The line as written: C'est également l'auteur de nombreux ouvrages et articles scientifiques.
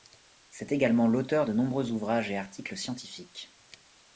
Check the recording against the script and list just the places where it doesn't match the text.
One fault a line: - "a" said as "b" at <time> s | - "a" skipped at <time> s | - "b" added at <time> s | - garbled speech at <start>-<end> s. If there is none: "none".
none